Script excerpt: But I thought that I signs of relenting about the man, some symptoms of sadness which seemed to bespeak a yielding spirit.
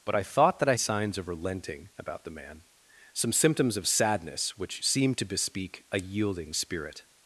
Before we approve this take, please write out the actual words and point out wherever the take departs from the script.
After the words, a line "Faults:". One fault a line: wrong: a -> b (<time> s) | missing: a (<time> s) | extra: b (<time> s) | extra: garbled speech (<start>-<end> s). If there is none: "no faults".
But I thought that I signs of relenting about the man, some symptoms of sadness which seemed to bespeak a yielding spirit.
Faults:
no faults